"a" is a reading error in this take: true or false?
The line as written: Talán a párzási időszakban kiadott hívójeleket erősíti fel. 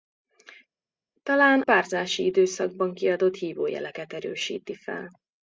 true